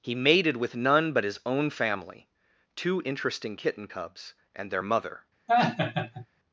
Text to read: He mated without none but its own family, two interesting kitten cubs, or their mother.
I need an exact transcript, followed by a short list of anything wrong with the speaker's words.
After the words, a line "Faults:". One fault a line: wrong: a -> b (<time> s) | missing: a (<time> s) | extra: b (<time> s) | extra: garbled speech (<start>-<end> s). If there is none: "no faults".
He mated with none but his own family, two interesting kitten cubs, and their mother.
Faults:
wrong: without -> with (0.6 s)
wrong: its -> his (1.2 s)
wrong: or -> and (4.5 s)